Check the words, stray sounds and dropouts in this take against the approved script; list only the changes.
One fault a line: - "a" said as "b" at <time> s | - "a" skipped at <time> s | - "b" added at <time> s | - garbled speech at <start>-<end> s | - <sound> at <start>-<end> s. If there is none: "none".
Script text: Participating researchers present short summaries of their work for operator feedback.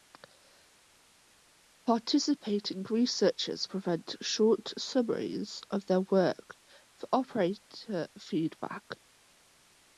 none